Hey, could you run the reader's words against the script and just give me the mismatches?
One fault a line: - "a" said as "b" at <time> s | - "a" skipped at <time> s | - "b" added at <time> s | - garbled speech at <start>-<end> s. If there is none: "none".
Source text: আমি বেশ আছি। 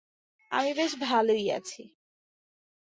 - "ভালোই" added at 1.0 s